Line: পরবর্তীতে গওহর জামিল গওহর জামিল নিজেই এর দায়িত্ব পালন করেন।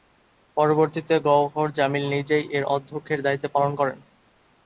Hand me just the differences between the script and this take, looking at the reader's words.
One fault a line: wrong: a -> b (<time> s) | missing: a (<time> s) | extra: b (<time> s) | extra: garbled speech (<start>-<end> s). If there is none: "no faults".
missing: গওহর জামিল (2.0 s)
extra: অধ্যক্ষের (2.8 s)